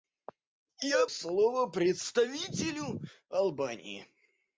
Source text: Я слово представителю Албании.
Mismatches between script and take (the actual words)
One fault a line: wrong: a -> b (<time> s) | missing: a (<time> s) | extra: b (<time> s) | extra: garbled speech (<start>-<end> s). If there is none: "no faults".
no faults